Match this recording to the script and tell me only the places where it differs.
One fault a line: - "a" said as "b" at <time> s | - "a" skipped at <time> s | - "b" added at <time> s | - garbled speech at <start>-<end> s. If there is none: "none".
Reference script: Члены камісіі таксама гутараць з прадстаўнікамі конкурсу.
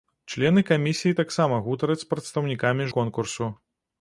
none